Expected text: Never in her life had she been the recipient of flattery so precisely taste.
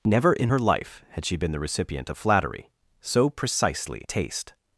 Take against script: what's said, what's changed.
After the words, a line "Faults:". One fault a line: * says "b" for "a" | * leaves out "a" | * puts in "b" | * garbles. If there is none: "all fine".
Never in her life had she been the recipient of flattery so precisely taste.
Faults:
all fine